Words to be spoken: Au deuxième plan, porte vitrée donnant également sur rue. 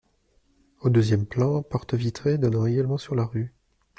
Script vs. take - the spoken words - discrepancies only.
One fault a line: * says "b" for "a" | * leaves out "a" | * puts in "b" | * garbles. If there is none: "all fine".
* puts in "la"